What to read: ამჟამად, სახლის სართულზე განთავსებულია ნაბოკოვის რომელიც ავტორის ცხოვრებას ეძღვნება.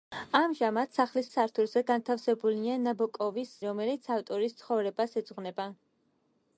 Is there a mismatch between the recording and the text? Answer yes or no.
no